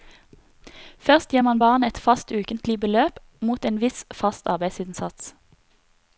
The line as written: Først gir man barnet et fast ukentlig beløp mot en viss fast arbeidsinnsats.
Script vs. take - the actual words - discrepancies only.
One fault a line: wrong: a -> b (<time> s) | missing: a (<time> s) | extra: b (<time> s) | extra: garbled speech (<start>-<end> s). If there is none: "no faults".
no faults